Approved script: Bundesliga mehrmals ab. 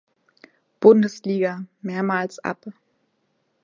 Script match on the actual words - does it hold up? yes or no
yes